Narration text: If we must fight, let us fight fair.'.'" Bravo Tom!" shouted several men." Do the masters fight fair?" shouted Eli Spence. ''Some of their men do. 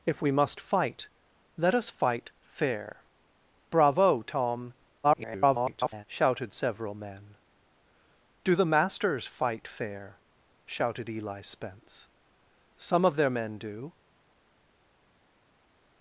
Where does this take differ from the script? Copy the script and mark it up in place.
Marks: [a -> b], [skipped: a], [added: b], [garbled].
If we must fight, let us fight fair.'.'" Bravo Tom!" [garbled] shouted several men." Do the masters fight fair?" shouted Eli Spence. ''Some of their men do.